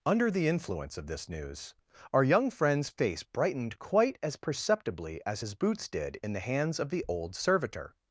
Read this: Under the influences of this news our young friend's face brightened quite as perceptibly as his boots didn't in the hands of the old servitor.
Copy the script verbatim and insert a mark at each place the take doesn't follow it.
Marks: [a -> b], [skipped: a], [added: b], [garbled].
Under the [influences -> influence] of this news our young friend's face brightened quite as perceptibly as his boots [didn't -> did] in the hands of the old servitor.